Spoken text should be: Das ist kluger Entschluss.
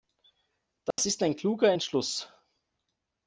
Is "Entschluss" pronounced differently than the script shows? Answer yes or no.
no